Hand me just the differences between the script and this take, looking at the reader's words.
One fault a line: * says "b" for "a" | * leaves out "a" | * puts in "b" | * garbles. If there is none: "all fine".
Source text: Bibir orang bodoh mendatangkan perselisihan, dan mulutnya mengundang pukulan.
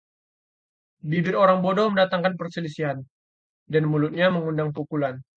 all fine